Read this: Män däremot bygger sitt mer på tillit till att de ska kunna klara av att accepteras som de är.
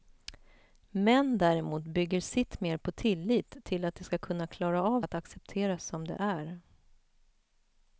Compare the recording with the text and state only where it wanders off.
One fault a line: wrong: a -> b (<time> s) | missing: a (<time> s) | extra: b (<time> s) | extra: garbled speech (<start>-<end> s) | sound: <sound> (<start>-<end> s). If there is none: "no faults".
no faults